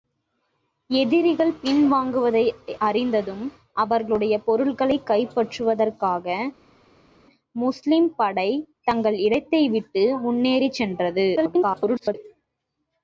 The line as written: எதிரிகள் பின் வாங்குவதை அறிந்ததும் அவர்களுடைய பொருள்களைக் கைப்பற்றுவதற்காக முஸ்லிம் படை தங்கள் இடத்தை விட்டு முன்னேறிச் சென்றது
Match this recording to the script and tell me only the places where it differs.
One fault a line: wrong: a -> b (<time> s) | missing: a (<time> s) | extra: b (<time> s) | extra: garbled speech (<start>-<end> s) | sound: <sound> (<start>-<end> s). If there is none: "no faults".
extra: garbled speech (11.4-12.2 s)